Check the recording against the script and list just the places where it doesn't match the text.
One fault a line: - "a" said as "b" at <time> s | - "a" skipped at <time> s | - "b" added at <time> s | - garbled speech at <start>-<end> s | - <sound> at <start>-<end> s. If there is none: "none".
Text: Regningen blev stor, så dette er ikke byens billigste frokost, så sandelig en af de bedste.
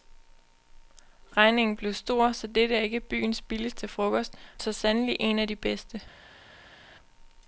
none